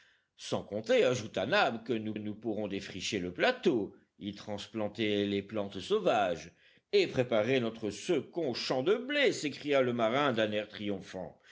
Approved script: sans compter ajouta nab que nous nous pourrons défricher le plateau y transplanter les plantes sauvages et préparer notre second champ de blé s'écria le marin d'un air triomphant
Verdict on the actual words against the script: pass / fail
pass